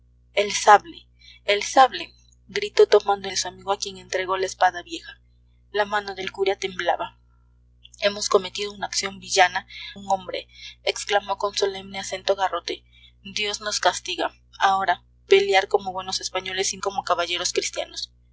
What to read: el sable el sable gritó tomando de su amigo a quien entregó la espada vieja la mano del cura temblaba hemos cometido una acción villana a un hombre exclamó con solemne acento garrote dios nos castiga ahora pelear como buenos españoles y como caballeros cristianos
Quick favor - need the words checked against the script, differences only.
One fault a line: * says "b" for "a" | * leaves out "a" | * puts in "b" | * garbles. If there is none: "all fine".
all fine